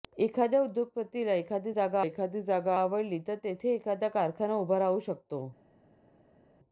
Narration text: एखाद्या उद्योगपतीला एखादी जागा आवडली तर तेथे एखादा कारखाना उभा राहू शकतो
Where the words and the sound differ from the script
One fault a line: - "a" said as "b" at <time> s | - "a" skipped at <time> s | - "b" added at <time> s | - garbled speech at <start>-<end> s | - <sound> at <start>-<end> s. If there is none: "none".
- "एखादी जागा" added at 2.0 s